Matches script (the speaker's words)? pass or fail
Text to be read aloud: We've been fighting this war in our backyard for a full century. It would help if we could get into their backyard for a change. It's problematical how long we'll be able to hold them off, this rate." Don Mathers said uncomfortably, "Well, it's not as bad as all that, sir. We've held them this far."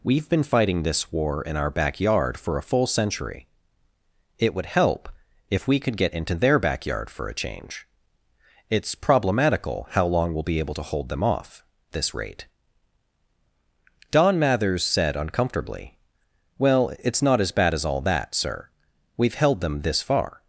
pass